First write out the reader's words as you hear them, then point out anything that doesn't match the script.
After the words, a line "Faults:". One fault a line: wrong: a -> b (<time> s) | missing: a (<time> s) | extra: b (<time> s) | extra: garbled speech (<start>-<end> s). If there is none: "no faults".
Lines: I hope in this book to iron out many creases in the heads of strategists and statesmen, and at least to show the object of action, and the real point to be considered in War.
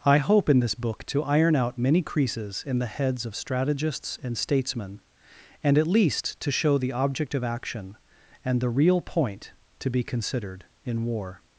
I hope in this book to iron out many creases in the heads of strategists and statesmen, and at least to show the object of action, and the real point to be considered in War.
Faults:
no faults